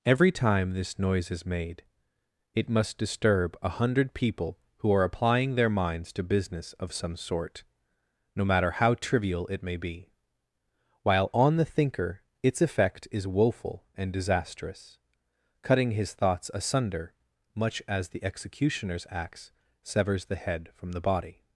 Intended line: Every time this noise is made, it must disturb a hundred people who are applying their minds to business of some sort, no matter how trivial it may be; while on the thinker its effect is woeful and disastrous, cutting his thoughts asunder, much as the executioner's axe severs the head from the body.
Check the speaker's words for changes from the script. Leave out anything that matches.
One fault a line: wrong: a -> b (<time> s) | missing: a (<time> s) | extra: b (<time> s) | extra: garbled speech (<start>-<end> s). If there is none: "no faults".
no faults